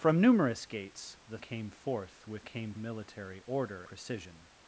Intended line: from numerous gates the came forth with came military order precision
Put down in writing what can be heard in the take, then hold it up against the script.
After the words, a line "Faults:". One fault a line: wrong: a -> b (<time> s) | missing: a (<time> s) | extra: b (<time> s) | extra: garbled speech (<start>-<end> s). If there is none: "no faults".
from numerous gates the came forth with came military order precision
Faults:
no faults